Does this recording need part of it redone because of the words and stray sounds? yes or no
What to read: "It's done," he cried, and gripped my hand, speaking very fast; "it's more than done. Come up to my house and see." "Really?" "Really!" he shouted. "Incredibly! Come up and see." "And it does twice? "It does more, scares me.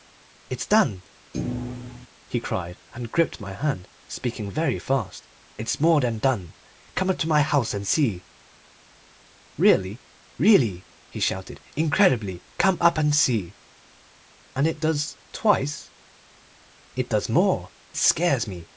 yes